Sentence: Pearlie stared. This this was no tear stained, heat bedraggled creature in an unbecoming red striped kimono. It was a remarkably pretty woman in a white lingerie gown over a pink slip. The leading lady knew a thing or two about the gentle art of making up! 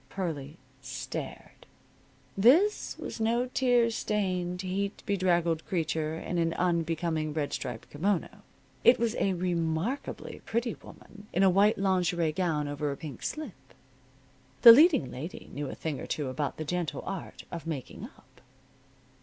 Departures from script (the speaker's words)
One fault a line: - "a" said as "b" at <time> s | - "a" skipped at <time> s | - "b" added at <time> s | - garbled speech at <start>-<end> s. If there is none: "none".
- "this" skipped at 3.0 s